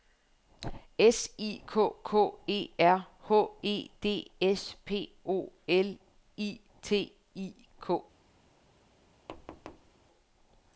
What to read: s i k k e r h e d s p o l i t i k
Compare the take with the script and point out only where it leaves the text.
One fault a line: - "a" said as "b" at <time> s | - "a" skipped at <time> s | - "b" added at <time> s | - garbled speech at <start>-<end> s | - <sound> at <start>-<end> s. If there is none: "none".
- thud at 9.3-9.9 s